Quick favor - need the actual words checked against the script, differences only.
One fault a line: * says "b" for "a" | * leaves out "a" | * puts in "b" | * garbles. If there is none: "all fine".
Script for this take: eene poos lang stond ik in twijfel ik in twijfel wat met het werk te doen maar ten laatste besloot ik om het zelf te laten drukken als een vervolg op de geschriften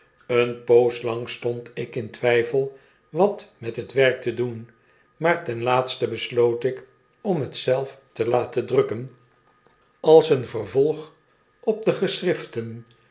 * leaves out "ik in twijfel"